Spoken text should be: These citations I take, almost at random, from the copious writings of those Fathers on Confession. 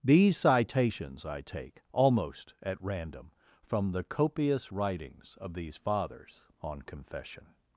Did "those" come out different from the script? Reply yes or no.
yes